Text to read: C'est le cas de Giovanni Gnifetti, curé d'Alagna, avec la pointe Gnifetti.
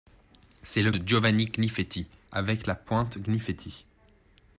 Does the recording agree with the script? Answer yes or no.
no